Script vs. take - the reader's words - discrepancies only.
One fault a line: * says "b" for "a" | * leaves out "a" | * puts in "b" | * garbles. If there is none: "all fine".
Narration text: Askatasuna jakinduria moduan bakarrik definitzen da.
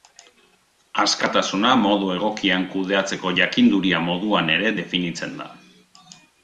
* puts in "modu egokian kudeatzeko"
* says "ere" for "bakarrik"